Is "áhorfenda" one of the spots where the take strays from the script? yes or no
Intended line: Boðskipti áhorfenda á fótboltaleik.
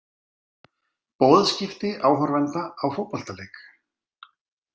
no